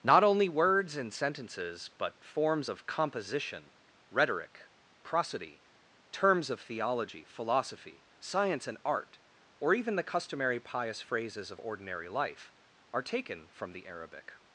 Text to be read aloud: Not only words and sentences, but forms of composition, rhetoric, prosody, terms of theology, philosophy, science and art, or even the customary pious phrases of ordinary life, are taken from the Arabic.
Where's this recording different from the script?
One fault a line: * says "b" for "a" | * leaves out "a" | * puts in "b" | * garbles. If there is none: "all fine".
all fine